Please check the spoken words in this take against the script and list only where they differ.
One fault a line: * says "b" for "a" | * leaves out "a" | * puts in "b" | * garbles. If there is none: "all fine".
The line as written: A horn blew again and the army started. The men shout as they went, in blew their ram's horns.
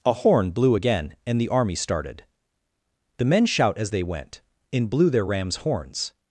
all fine